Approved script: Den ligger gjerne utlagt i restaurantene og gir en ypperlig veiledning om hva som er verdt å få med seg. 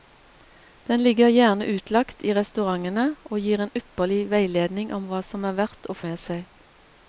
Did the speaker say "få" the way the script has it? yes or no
no